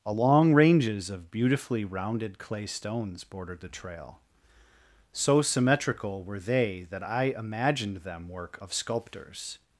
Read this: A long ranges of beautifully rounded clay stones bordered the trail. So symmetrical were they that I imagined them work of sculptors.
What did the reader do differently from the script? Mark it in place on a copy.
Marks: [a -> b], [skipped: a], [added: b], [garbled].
A long ranges of beautifully rounded clay stones bordered the trail. So symmetrical were they that I imagined them work of sculptors.